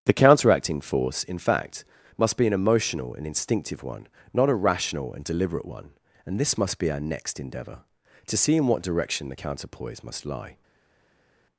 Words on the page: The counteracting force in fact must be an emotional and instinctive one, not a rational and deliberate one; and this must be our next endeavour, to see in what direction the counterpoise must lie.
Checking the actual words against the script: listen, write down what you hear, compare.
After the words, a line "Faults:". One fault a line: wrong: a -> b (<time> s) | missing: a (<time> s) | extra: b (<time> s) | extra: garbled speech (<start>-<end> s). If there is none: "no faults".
The counteracting force in fact must be an emotional and instinctive one, not a rational and deliberate one; and this must be our next endeavour, to see in what direction the counterpoise must lie.
Faults:
no faults